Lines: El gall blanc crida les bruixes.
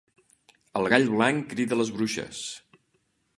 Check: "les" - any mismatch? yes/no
no